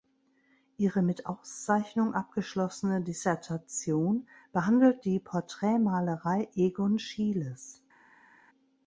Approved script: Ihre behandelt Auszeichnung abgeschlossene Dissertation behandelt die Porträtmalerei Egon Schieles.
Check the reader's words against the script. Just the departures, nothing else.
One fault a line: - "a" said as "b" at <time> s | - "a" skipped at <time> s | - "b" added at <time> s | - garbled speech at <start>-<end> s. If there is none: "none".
- "behandelt" said as "mit" at 1.0 s